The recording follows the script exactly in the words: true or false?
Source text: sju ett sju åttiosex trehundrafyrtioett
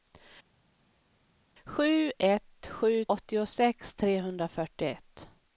true